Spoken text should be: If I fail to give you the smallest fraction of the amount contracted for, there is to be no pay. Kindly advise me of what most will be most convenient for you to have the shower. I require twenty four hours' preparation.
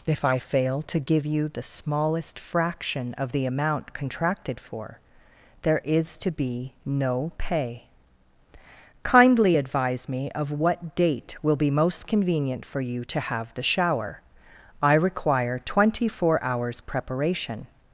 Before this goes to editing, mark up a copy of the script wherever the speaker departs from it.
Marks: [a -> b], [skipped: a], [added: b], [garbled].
If I fail to give you the smallest fraction of the amount contracted for, there is to be no pay. Kindly advise me of what [most -> date] will be most convenient for you to have the shower. I require twenty four hours' preparation.